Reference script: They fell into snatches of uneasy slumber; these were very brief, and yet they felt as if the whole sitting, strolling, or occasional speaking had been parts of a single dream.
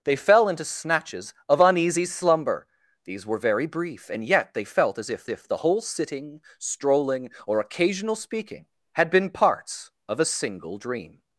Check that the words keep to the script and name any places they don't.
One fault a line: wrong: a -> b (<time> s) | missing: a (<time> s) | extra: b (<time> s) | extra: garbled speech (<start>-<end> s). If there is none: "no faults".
extra: if (5.3 s)